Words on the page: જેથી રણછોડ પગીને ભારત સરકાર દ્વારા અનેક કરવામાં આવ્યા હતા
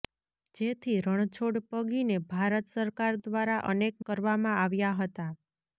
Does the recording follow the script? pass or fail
pass